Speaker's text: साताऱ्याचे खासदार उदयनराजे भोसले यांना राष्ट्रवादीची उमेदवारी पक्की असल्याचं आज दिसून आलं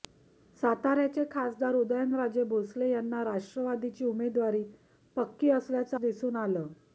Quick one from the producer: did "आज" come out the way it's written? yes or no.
no